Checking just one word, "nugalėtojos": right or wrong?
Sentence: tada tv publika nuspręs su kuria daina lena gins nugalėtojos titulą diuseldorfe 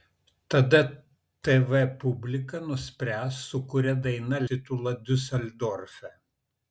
wrong